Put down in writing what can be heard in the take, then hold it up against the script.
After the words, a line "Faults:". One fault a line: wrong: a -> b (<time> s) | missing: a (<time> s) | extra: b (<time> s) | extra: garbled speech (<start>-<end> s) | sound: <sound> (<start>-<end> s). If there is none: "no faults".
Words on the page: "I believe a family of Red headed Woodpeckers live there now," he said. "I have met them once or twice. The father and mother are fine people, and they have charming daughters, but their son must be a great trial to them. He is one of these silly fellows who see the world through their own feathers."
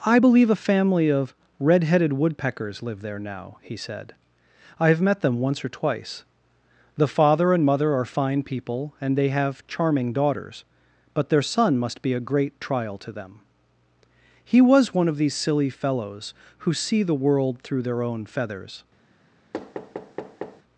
"I believe a family of Red headed Woodpeckers live there now," he said. "I have met them once or twice. The father and mother are fine people, and they have charming daughters, but their son must be a great trial to them. He was one of these silly fellows who see the world through their own feathers."
Faults:
wrong: is -> was (14.6 s)
sound: thud (19.5-20.6 s)